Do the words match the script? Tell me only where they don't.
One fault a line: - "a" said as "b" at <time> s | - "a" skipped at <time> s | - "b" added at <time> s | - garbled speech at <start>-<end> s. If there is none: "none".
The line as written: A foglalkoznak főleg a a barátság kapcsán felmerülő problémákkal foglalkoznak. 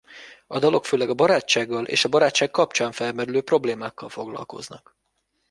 - "foglalkoznak" said as "dalok" at 0.6 s
- "barátsággal és" added at 1.1 s